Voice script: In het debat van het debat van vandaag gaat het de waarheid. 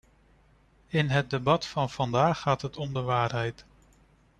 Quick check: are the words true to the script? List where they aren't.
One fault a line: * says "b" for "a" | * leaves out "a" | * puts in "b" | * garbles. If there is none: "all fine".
* leaves out "het debat van"
* puts in "om"